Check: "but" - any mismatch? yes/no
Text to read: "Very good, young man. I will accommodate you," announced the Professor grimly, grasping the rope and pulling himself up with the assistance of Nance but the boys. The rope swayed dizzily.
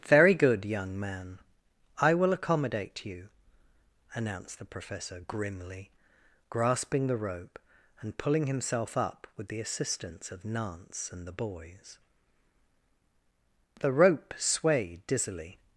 yes